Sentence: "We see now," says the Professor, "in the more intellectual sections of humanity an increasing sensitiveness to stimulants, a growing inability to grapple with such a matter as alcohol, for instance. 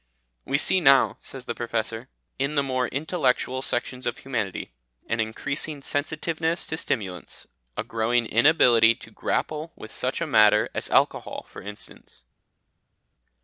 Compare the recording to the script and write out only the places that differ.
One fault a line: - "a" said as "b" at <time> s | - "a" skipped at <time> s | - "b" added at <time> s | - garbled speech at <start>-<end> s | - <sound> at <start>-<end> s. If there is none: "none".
none